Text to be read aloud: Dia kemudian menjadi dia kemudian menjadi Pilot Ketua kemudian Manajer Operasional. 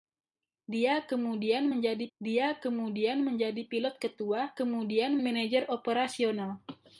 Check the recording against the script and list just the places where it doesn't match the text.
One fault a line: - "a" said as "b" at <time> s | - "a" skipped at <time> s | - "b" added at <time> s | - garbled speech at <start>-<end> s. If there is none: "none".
none